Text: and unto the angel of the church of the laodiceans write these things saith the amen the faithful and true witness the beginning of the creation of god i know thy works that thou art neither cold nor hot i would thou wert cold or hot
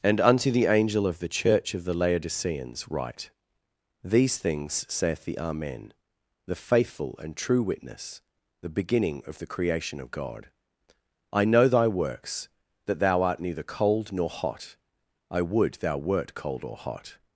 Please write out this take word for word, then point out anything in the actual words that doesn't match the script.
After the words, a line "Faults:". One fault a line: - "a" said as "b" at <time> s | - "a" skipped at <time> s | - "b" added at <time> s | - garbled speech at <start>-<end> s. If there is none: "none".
and unto the angel of the church of the laodiceans write these things saith the amen the faithful and true witness the beginning of the creation of god i know thy works that thou art neither cold nor hot i would thou wert cold or hot
Faults:
none